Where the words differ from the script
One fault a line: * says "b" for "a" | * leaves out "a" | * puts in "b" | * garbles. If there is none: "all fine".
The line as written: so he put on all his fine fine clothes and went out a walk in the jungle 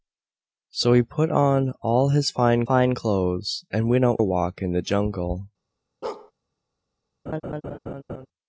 all fine